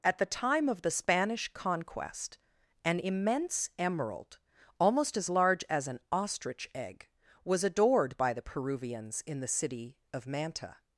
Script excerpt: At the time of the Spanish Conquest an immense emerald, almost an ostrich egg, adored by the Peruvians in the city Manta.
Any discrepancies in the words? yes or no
yes